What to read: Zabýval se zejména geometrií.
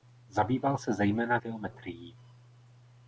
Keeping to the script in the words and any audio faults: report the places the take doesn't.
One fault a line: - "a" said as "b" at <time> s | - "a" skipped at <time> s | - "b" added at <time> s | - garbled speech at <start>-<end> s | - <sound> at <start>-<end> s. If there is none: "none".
none